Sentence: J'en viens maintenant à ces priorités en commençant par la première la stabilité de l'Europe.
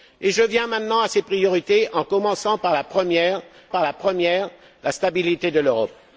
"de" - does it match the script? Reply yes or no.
yes